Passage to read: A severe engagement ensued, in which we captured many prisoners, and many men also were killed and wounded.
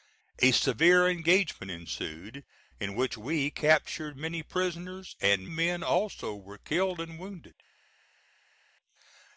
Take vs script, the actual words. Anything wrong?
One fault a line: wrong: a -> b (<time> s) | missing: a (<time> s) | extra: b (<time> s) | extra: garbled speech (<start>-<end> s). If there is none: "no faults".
missing: many (5.5 s)